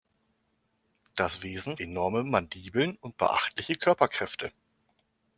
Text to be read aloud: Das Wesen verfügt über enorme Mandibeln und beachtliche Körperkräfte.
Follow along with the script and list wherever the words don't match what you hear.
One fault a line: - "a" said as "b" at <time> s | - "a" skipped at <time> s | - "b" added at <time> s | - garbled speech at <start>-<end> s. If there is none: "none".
- "verfügt über" skipped at 1.8 s